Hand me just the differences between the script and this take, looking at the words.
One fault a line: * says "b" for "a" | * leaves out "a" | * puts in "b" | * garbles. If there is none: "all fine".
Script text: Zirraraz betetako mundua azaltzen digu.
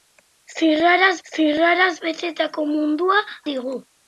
* puts in "zirraraz"
* leaves out "azaltzen"